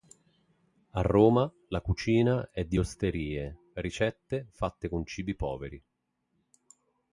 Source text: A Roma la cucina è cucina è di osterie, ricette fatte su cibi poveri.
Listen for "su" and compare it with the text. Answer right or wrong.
wrong